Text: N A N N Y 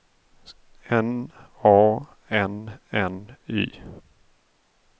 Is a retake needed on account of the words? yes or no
no